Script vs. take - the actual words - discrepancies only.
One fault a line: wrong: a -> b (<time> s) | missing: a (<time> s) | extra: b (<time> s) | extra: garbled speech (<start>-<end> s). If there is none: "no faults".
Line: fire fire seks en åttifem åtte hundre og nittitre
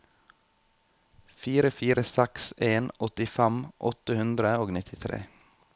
no faults